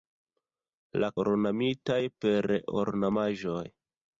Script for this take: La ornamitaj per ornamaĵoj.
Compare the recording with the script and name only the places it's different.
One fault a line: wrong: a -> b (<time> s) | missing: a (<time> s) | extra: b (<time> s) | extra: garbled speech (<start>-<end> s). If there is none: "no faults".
no faults